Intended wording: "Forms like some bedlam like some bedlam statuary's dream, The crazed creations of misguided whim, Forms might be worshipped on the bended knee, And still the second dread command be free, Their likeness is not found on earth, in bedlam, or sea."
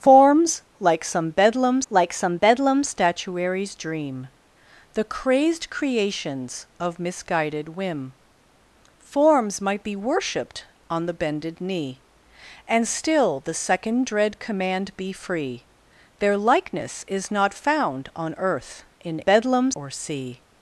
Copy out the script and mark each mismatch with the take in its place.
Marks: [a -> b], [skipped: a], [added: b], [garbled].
"Forms like some bedlam like some bedlam statuary's dream, The crazed creations of misguided whim, Forms might be worshipped on the bended knee, And still the second dread command be free, Their likeness is not found on earth, in bedlam, or sea."